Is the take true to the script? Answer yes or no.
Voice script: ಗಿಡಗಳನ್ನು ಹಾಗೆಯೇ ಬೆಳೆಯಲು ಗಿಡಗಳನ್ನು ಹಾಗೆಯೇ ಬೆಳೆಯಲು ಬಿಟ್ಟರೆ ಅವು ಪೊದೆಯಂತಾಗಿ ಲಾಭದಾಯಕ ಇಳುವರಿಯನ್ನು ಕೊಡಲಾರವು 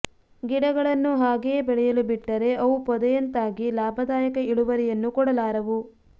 no